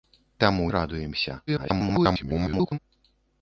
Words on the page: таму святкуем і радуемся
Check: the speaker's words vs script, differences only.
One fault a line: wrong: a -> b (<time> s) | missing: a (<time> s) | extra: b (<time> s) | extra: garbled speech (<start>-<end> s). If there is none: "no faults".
missing: святкуем (0.7 s)
extra: garbled speech (1.5-2.8 s)